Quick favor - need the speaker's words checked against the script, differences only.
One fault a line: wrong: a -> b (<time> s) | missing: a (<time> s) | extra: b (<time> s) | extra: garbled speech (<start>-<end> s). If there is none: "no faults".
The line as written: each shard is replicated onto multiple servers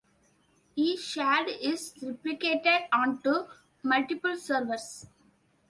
no faults